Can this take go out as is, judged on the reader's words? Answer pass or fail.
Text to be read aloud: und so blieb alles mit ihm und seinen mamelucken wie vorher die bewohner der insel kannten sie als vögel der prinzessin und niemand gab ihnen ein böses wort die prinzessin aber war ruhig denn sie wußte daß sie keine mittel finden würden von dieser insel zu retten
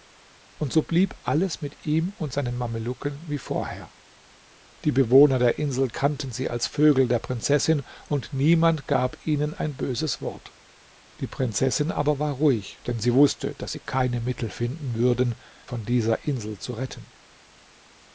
pass